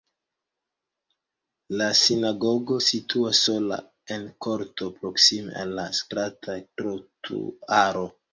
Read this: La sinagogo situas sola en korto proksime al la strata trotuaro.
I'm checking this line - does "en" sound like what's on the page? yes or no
yes